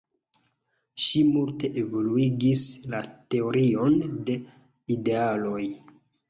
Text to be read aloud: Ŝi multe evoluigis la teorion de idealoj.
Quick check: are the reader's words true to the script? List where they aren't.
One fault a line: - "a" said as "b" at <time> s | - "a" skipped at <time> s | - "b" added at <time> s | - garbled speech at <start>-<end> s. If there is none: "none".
none